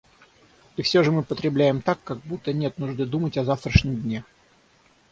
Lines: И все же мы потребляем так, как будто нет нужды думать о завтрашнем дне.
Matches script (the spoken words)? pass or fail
pass